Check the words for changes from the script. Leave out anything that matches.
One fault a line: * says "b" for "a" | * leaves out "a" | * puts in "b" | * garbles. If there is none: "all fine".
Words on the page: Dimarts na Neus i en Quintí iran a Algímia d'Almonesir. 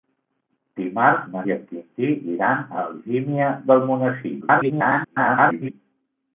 * leaves out "Neus"
* garbles